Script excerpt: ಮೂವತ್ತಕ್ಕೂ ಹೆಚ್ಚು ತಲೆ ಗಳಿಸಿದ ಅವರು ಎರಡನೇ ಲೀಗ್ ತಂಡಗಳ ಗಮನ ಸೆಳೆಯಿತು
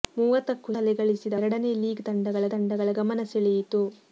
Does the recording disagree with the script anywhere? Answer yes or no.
yes